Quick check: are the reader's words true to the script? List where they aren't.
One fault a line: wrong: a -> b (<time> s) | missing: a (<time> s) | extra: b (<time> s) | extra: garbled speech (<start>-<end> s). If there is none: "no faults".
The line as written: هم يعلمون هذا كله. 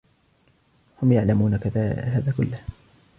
no faults